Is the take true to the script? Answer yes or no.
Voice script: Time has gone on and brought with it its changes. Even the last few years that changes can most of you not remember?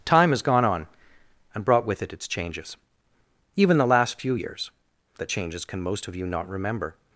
yes